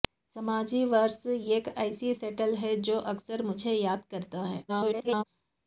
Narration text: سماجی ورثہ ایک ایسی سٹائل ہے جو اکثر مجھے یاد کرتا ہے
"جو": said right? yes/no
yes